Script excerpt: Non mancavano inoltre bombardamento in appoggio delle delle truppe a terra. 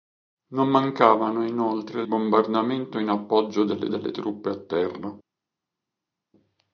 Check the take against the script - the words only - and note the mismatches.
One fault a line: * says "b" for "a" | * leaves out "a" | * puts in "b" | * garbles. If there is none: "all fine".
all fine